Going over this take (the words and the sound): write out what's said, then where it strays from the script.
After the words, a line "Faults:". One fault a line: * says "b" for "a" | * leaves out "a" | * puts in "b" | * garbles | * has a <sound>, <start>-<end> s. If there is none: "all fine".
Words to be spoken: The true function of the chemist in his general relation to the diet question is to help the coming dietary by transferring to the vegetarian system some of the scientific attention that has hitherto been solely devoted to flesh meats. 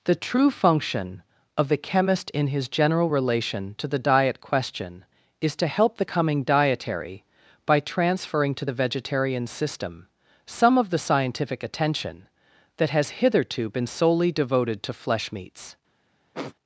The true function of the chemist in his general relation to the diet question is to help the coming dietary by transferring to the vegetarian system some of the scientific attention that has hitherto been solely devoted to flesh meats.
Faults:
* has a sniff, 16.3-16.5 s